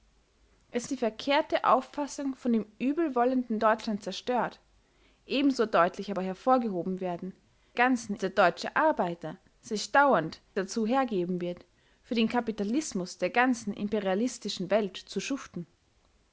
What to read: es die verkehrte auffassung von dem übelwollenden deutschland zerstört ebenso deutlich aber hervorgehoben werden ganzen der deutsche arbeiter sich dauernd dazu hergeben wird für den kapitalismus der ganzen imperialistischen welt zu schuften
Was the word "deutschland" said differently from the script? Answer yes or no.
no